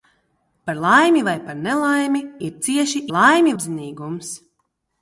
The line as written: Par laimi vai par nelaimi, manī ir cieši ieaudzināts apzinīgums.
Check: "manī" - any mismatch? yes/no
yes